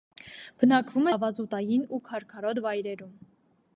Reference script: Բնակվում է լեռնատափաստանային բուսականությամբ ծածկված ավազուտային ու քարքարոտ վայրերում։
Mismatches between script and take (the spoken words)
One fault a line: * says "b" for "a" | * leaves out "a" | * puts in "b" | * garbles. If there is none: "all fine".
* leaves out "լեռնատափաստանային բուսականությամբ ծածկված"